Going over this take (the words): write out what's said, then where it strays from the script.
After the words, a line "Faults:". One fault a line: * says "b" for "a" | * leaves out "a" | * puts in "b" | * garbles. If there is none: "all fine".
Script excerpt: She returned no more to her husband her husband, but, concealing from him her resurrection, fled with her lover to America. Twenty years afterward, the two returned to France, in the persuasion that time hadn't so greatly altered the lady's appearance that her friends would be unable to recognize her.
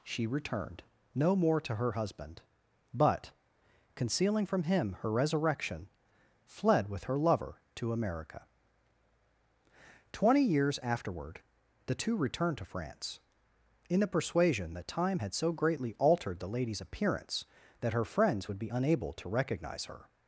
She returned no more to her husband, but, concealing from him her resurrection, fled with her lover to America. Twenty years afterward, the two returned to France, in the persuasion that time had so greatly altered the lady's appearance that her friends would be unable to recognize her.
Faults:
* leaves out "her husband"
* says "had" for "hadn't"